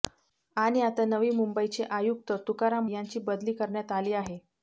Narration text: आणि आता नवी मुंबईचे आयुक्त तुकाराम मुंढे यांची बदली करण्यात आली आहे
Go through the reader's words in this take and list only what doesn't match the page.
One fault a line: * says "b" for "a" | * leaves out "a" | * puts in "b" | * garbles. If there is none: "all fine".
* leaves out "मुंढे"